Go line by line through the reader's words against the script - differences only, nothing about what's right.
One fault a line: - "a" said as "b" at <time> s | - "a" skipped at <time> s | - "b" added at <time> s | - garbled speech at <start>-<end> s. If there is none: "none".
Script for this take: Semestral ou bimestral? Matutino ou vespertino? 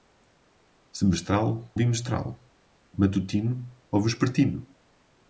- "ou" skipped at 1.8 s